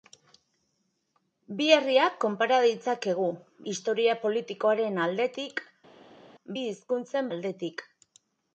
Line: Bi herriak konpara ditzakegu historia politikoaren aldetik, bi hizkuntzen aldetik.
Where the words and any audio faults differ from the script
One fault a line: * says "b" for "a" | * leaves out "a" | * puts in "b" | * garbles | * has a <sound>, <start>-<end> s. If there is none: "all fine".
all fine